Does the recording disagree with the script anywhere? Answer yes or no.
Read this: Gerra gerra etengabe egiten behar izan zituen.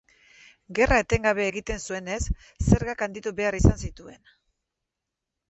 yes